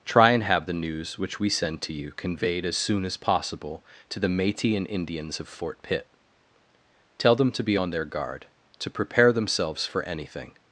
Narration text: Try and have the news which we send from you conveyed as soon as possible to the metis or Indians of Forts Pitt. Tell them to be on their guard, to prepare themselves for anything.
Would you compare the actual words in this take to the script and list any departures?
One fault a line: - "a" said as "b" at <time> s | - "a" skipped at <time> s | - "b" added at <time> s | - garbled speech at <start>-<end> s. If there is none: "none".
- "from" said as "to" at 1.8 s
- "or" said as "and" at 4.8 s
- "Forts" said as "Fort" at 5.5 s